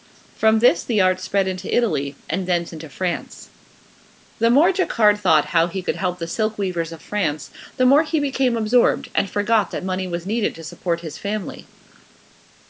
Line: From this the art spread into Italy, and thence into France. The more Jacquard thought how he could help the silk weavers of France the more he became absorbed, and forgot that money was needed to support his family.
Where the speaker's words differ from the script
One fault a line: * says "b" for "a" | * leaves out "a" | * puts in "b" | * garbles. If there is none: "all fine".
all fine